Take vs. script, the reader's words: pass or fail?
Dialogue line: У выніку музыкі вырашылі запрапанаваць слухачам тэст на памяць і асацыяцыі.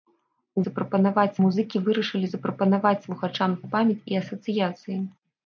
fail